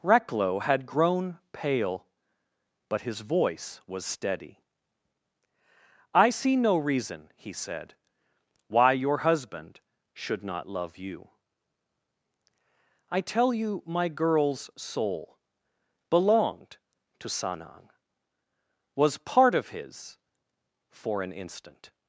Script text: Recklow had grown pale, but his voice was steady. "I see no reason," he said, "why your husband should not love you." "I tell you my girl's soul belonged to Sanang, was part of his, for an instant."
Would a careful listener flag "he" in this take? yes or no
no